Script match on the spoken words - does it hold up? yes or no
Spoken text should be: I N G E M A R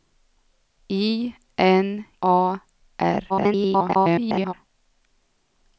no